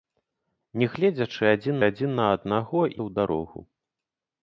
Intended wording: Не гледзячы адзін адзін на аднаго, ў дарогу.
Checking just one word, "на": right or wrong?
right